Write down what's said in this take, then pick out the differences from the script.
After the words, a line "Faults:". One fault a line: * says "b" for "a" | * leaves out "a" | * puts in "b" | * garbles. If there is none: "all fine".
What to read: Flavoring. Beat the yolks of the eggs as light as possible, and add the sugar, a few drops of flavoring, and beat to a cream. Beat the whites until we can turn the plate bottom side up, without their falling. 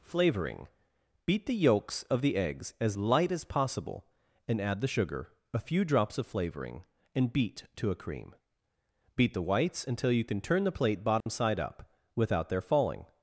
Flavoring. Beat the yolks of the eggs as light as possible, and add the sugar, a few drops of flavoring, and beat to a cream. Beat the whites until you can turn the plate bottom side up, without their falling.
Faults:
* says "you" for "we"